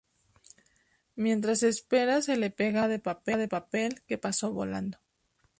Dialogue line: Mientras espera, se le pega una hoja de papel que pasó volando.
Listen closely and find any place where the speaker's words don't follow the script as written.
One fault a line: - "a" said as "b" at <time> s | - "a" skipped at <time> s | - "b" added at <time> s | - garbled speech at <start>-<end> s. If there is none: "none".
none